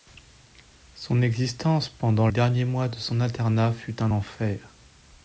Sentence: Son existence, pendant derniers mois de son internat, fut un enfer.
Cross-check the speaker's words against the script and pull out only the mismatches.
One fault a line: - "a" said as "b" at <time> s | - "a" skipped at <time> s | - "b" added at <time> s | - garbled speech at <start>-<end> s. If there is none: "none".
none